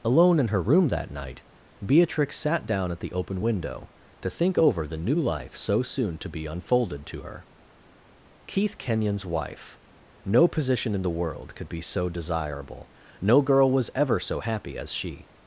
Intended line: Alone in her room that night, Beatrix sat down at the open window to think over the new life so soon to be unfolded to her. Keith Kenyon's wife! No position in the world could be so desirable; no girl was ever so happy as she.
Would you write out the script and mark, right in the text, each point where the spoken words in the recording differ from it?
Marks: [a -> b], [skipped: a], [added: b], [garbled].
Alone in her room that night, Beatrix sat down at the open window to think over the new life so soon to be unfolded to her. Keith Kenyon's wife! No position in the world could be so desirable; no girl was ever so happy as she.